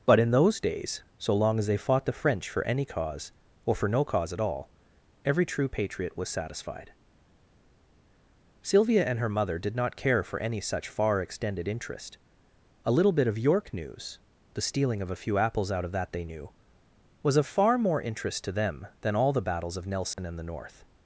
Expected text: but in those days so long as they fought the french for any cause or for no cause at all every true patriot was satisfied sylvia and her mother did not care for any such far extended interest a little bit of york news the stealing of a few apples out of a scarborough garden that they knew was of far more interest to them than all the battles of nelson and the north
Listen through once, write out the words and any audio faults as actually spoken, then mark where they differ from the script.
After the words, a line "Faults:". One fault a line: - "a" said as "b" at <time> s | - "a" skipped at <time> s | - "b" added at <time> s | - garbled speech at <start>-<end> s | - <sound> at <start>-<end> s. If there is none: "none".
but in those days so long as they fought the french for any cause or for no cause at all every true patriot was satisfied sylvia and her mother did not care for any such far extended interest a little bit of york news the stealing of a few apples out of that they knew was of far more interest to them than all the battles of nelson and the north
Faults:
- "a scarborough garden" skipped at 15.9 s
- dropout at 20.1-20.2 s